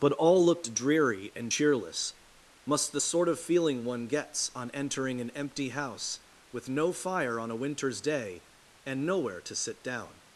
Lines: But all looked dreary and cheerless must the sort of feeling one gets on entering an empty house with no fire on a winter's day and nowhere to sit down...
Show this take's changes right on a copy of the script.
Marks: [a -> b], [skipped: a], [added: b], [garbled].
But all looked dreary and cheerless must the sort of feeling one gets on entering an empty house with no fire on a winter's day and nowhere to sit down...